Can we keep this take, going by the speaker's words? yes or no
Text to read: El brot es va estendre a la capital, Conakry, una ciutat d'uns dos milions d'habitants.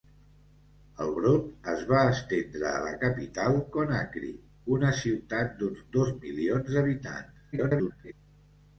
no